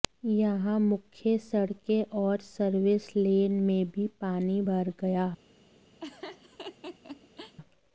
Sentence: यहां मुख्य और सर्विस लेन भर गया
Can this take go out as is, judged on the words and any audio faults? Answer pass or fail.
fail